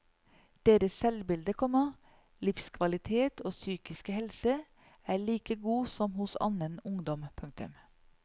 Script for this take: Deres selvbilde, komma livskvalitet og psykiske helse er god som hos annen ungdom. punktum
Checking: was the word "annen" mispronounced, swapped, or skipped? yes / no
no